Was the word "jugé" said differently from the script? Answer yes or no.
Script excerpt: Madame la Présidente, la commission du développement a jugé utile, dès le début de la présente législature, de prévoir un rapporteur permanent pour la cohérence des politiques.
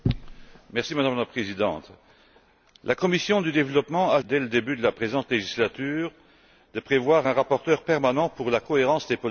yes